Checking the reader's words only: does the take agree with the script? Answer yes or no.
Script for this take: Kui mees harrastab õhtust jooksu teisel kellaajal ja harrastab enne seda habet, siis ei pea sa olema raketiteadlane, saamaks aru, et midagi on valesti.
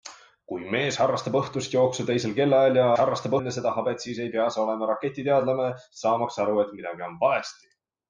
yes